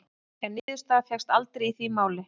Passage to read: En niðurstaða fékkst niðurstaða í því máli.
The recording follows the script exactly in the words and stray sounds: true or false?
false